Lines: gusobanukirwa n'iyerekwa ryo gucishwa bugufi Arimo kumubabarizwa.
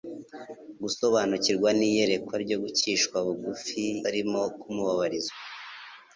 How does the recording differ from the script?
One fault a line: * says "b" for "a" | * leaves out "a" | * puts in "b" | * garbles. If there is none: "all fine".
all fine